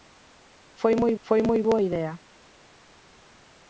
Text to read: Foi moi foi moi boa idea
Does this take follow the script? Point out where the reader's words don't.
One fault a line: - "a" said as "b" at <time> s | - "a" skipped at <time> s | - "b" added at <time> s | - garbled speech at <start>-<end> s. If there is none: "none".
none